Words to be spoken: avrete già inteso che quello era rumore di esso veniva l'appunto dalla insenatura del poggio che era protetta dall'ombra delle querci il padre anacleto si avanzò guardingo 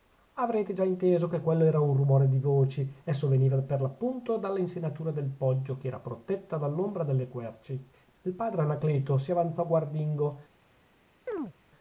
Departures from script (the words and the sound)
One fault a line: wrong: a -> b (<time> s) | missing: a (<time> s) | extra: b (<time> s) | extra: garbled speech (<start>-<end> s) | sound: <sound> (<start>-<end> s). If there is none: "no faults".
extra: un (1.8 s)
extra: voci (2.4 s)
extra: per (3.6 s)
sound: chirp (11.3-11.5 s)